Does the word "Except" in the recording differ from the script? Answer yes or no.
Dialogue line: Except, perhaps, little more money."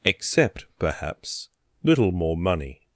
no